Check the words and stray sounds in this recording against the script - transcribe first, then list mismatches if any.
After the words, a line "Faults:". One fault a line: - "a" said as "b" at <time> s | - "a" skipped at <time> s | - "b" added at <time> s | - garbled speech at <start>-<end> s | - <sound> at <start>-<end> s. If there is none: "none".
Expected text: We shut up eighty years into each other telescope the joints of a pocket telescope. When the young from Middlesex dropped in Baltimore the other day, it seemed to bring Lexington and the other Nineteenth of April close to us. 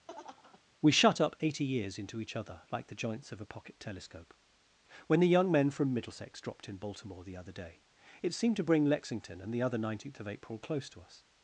We shut up eighty years into each other like the joints of a pocket telescope. When the young men from Middlesex dropped in Baltimore the other day, it seemed to bring Lexington and the other Nineteenth of April close to us.
Faults:
- laugh at 0.1-0.6 s
- "telescope" said as "like" at 2.7 s
- "men" added at 5.5 s